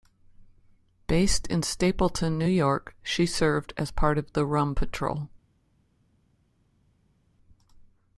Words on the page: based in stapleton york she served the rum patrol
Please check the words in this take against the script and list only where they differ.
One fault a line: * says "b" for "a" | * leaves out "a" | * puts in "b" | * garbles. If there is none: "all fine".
* puts in "new"
* puts in "as part of"